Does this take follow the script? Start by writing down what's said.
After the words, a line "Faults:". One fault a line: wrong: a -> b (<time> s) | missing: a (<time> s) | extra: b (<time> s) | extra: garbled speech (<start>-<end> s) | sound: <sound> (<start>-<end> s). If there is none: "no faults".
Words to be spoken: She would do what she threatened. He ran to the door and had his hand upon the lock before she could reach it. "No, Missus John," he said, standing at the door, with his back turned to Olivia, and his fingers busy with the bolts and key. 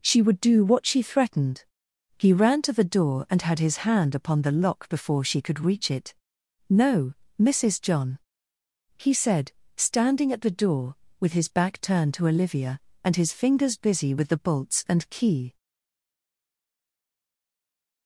She would do what she threatened. He ran to the door and had his hand upon the lock before she could reach it. "No, Missus John," he said, standing at the door, with his back turned to Olivia, and his fingers busy with the bolts and key.
Faults:
no faults